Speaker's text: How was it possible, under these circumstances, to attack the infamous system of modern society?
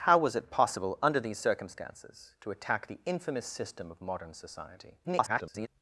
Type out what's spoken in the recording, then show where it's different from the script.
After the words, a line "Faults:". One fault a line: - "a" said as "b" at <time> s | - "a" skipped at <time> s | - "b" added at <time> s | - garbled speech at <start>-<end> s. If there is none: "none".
How was it possible, under these circumstances, to attack the infamous system of modern society? [garbled]
Faults:
- garbled speech at 5.0-5.7 s